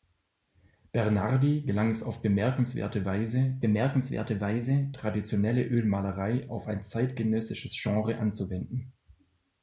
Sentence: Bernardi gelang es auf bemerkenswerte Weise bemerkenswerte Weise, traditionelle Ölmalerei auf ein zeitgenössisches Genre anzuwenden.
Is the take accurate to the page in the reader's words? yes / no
yes